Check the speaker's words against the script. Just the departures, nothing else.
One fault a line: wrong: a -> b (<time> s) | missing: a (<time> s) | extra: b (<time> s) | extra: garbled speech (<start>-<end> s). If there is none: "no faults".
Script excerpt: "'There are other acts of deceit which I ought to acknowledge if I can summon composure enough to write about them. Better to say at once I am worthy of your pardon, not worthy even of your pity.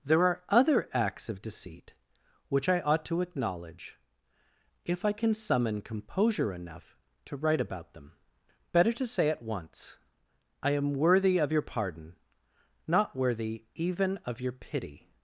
no faults